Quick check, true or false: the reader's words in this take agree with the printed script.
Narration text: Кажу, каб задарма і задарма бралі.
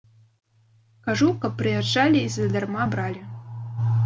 false